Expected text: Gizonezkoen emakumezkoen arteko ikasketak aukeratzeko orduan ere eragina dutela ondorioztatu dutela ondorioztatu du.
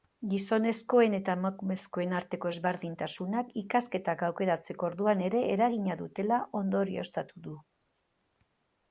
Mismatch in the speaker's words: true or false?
true